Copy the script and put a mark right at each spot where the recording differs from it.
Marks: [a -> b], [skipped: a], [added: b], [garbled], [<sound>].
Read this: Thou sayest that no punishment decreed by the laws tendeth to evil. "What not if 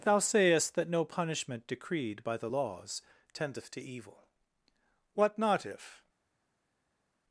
Thou sayest that no punishment decreed by the laws tendeth to evil. "What not if